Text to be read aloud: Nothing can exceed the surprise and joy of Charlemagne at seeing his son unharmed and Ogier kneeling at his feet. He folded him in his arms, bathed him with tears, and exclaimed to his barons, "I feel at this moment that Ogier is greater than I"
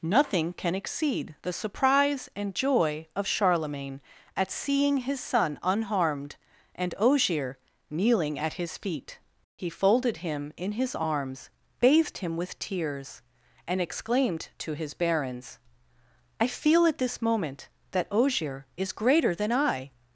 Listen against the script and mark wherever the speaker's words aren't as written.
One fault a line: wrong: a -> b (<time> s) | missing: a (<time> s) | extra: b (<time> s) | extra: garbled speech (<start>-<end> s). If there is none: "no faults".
no faults